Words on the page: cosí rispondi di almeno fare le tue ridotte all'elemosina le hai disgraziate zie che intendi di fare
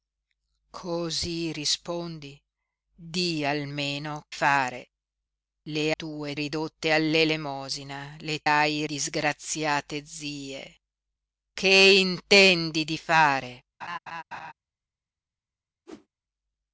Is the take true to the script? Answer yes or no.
yes